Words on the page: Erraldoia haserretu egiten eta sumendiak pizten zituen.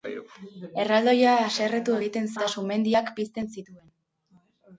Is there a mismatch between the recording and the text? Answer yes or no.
no